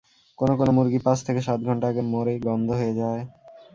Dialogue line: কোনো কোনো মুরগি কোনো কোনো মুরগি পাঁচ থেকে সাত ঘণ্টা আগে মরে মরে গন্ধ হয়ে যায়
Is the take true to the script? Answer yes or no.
no